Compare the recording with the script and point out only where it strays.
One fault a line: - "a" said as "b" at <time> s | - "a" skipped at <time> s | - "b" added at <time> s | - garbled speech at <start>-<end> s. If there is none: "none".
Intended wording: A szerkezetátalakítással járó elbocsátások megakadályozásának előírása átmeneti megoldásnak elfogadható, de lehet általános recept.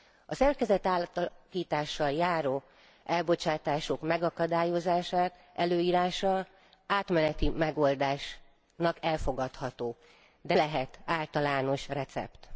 none